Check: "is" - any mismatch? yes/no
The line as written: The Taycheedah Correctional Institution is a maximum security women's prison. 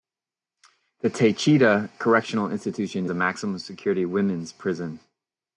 yes